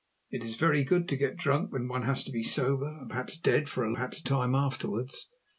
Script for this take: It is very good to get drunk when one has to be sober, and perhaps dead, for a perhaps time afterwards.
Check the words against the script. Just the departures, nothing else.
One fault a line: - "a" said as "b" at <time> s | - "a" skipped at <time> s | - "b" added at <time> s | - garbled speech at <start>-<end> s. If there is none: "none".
none